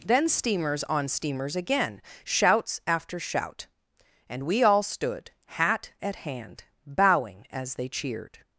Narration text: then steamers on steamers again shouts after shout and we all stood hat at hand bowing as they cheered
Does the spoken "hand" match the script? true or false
true